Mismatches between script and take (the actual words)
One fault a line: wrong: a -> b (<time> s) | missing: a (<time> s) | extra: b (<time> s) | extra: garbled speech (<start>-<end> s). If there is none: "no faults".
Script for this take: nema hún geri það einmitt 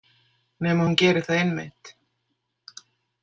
no faults